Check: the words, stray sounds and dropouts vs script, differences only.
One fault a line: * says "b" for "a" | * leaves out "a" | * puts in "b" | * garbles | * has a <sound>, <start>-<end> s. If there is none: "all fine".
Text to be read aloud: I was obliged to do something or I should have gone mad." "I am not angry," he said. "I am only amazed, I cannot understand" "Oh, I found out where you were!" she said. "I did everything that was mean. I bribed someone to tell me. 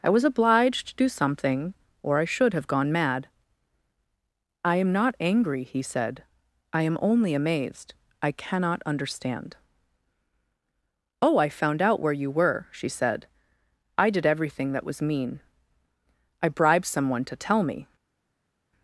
all fine